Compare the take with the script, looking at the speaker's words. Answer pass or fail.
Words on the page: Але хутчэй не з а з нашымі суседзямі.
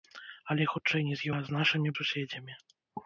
pass